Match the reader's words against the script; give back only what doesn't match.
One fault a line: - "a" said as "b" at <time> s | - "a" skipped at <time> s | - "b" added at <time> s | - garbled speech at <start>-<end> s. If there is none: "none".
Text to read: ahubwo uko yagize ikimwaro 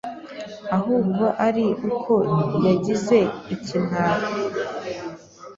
- "ari" added at 1.5 s